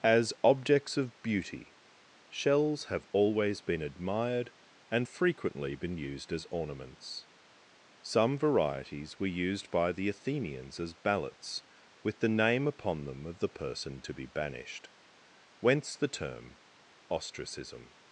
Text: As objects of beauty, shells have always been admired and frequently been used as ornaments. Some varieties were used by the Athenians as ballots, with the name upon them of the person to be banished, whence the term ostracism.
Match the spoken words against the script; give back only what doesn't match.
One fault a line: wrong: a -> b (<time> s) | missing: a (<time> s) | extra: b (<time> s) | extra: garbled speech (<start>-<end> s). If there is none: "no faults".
no faults